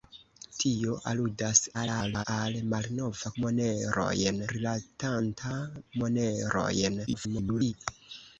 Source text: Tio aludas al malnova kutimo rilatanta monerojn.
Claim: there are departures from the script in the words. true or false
true